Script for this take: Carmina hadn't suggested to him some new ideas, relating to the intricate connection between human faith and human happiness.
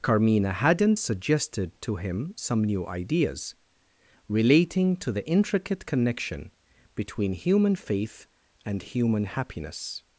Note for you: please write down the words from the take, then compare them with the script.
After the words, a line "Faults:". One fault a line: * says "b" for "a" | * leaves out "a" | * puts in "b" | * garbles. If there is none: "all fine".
Carmina hadn't suggested to him some new ideas, relating to the intricate connection between human faith and human happiness.
Faults:
all fine